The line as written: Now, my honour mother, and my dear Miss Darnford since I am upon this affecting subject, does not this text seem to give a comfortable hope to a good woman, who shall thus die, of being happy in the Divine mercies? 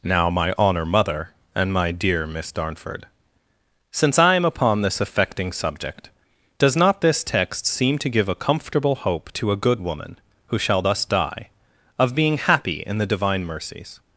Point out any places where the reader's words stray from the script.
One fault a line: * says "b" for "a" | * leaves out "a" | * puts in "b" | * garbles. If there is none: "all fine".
all fine